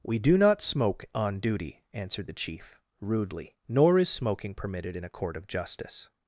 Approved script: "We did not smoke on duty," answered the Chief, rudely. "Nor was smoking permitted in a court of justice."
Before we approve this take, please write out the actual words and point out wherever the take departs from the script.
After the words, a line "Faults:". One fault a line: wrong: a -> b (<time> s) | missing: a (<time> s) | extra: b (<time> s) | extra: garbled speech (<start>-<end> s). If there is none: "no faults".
"We do not smoke on duty," answered the Chief, rudely. "Nor is smoking permitted in a court of justice."
Faults:
wrong: did -> do (0.2 s)
wrong: was -> is (4.0 s)